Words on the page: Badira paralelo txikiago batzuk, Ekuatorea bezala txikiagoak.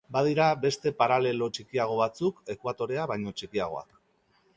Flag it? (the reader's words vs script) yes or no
yes